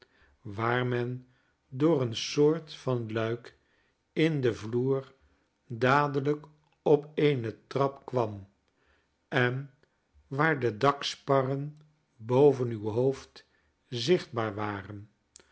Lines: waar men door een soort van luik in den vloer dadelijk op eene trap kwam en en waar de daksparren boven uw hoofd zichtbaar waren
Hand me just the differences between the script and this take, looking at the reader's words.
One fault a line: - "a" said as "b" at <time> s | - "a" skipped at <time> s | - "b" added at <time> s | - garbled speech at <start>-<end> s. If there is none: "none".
- "en" skipped at 9.7 s